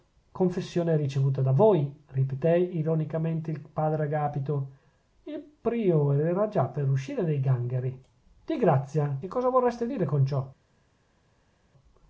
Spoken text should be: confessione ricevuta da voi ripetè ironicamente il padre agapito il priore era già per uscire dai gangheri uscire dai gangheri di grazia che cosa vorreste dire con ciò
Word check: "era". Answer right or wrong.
right